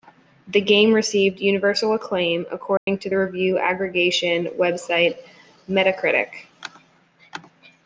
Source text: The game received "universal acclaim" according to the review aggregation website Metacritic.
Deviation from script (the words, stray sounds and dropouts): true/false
true